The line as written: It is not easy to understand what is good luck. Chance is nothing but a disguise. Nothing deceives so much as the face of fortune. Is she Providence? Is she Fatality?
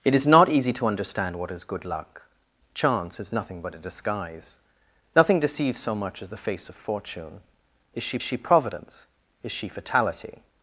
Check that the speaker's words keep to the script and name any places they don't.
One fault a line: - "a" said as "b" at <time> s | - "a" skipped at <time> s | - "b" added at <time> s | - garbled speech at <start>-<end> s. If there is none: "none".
- "she" added at 8.2 s